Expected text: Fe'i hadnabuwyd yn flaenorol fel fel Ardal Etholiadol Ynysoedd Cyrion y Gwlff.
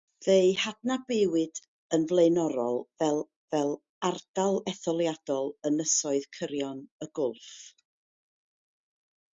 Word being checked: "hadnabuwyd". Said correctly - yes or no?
yes